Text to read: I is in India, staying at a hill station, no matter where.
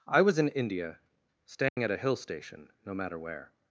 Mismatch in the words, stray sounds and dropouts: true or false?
true